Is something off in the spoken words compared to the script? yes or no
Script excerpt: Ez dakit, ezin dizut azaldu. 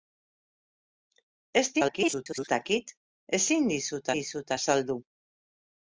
yes